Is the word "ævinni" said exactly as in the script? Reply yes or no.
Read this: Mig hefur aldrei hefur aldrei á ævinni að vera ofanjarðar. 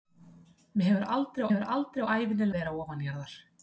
yes